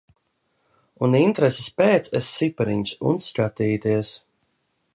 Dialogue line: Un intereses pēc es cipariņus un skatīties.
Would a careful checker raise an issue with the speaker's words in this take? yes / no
no